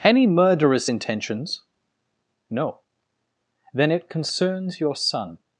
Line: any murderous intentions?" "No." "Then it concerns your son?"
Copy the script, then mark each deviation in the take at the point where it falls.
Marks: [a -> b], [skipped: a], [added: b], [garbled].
any murderous intentions?" "No." "Then it concerns your son?"